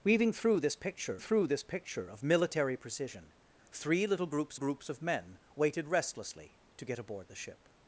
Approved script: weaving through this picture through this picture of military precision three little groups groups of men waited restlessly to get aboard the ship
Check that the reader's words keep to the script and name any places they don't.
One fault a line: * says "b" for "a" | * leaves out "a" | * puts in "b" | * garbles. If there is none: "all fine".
all fine